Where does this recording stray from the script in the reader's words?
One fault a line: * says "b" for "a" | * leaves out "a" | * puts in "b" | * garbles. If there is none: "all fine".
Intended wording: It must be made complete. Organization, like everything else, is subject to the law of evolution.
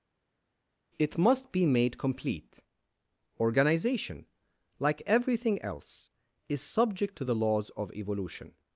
* says "laws" for "law"